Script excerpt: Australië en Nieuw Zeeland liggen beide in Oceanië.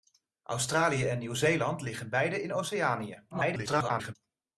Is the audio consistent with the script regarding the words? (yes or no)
no